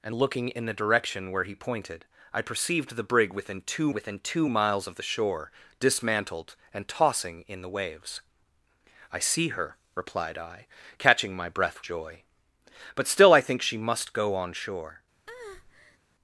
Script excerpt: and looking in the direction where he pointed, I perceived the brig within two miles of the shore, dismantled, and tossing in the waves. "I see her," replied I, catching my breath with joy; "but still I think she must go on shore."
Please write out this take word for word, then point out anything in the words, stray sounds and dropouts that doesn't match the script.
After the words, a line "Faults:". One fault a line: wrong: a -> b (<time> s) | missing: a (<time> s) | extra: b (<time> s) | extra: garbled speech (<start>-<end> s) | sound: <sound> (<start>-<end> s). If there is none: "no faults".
and looking in the direction where he pointed, I perceived the brig within two within two miles of the shore, dismantled, and tossing in the waves. "I see her," replied I, catching my breath joy; "but still I think she must go on shore."
Faults:
extra: within two (3.9 s)
missing: with (11.8 s)
sound: breath (15.3-16.0 s)